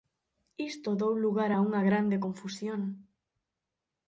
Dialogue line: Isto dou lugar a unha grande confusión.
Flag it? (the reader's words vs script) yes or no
no